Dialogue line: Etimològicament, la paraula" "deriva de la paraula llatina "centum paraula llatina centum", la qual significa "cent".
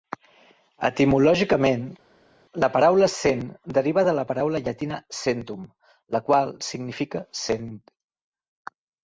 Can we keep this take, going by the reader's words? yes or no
no